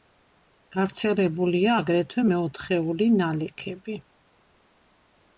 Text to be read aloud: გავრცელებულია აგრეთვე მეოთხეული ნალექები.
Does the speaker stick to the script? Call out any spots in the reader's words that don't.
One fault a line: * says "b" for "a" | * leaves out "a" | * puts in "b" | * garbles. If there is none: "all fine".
all fine